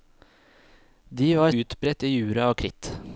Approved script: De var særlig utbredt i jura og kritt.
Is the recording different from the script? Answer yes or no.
yes